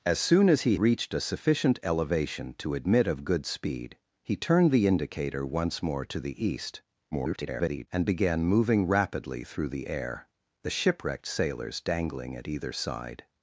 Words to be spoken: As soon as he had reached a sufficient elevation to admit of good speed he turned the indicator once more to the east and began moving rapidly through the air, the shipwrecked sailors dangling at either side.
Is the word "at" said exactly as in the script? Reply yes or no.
yes